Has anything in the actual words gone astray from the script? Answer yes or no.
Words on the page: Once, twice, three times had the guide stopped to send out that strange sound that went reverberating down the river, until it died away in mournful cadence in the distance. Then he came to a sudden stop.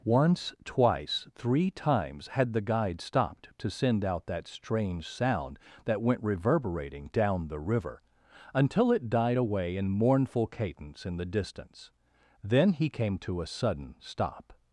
no